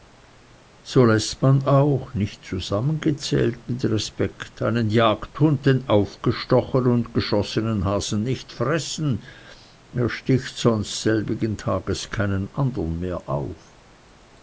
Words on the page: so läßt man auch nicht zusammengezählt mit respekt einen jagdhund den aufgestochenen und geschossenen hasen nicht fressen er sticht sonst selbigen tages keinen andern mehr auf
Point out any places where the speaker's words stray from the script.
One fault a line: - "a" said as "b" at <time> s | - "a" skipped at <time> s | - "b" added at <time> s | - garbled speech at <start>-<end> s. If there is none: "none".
none